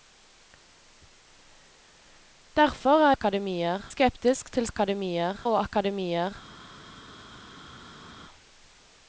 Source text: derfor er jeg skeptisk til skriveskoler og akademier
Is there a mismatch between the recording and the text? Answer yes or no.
yes